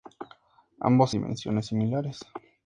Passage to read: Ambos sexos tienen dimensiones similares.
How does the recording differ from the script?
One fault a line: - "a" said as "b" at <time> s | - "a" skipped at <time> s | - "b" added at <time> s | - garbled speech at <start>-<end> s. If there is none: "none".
- "sexos tienen" skipped at 1.1 s